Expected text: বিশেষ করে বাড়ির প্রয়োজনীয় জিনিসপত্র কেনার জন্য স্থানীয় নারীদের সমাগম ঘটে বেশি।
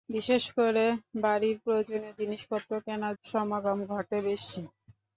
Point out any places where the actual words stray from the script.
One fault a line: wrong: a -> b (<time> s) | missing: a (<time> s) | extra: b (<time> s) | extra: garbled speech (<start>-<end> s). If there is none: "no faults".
missing: জন্য স্থানীয় নারীদের (3.1 s)